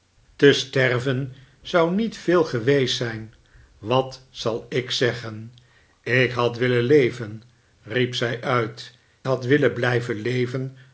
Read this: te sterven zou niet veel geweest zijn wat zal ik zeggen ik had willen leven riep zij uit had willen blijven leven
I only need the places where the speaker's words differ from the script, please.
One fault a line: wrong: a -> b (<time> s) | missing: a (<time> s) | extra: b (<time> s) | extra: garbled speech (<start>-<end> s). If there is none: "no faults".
no faults